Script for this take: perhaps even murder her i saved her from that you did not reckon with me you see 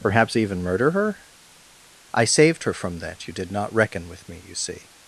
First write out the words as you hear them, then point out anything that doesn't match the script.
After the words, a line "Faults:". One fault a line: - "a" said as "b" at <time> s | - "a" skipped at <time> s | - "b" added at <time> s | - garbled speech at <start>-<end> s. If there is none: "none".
perhaps even murder her i saved her from that you did not reckon with me you see
Faults:
none